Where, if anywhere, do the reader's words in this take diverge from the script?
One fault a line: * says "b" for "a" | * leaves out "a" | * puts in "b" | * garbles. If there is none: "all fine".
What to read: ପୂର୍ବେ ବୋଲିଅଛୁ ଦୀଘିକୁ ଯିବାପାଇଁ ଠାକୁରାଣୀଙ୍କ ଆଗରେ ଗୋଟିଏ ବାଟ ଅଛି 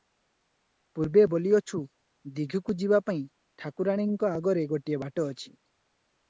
all fine